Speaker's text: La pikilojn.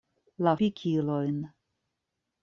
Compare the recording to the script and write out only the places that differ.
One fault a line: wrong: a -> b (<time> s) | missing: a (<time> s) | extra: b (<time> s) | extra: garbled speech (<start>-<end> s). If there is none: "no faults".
no faults